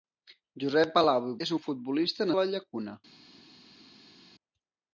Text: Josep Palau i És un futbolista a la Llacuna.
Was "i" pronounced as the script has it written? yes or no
yes